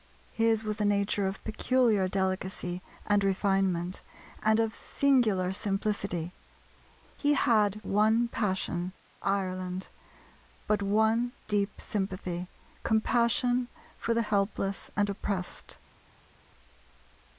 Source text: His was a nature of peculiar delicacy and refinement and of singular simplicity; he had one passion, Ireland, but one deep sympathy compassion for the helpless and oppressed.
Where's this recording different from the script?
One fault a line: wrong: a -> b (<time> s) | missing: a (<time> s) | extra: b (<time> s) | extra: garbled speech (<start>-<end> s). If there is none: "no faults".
no faults